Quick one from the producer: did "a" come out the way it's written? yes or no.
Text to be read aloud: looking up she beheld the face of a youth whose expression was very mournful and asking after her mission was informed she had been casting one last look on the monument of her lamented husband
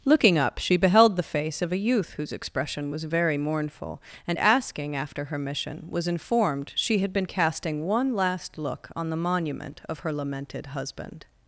yes